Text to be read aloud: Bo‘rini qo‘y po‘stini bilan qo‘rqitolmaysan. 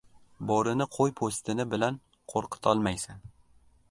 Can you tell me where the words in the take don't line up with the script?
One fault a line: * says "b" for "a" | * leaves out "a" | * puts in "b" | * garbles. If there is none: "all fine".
all fine